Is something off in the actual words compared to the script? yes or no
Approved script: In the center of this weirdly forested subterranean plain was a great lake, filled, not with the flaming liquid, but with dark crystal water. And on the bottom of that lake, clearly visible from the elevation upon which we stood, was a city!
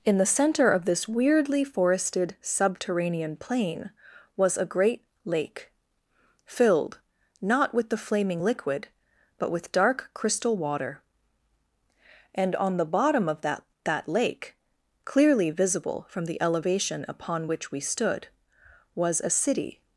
yes